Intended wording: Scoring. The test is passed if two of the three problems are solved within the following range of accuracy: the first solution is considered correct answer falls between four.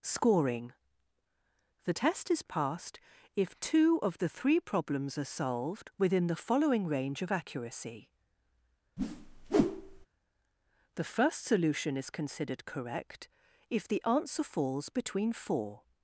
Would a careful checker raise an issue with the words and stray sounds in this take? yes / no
yes